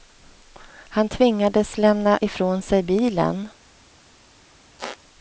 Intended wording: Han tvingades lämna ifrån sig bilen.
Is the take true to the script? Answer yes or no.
yes